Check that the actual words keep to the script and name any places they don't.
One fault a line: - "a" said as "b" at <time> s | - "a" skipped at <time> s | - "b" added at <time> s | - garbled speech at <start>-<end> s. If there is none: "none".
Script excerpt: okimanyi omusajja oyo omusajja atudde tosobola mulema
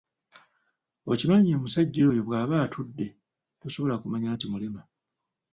- "omusajja" said as "bwaba" at 2.3 s
- "kumanya nti" added at 4.0 s